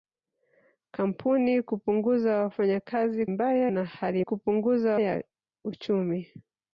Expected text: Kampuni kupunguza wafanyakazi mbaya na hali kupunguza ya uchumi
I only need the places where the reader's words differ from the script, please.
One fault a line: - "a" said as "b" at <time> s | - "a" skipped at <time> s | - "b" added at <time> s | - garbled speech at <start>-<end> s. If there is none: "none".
none